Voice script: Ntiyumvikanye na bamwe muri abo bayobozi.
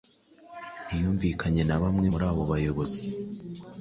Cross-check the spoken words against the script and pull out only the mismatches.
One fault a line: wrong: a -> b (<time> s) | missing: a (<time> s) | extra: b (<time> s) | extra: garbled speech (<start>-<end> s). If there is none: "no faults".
no faults